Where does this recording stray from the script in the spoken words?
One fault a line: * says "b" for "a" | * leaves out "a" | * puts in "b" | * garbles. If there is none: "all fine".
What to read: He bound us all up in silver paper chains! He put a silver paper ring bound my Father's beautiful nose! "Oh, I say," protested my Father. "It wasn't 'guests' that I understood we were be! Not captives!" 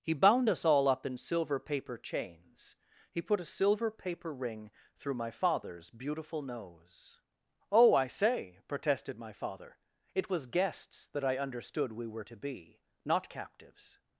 * says "through" for "bound"
* says "was" for "wasn't"
* puts in "to"